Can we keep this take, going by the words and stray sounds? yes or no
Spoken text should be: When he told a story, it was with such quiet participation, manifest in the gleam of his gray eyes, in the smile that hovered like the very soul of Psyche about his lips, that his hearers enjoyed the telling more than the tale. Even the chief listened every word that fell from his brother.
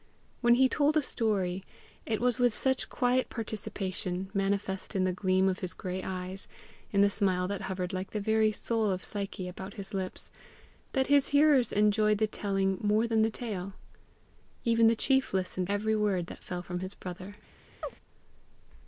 no